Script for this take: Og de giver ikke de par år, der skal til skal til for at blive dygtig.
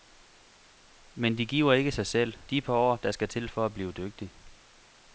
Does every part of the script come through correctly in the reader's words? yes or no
no